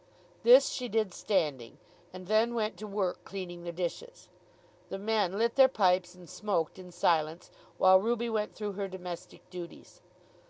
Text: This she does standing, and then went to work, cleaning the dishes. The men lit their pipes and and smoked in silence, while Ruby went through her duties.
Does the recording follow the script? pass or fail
fail